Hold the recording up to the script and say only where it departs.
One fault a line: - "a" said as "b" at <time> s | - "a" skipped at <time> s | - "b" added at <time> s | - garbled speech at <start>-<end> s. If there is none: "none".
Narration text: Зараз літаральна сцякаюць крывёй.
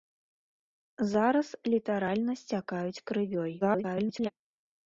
- garbled speech at 3.6-4.3 s